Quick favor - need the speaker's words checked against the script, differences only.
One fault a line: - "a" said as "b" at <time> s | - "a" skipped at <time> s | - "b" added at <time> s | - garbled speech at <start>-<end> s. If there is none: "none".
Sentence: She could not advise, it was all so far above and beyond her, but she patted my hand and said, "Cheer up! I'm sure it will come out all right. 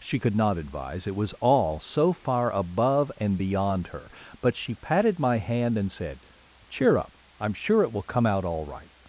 none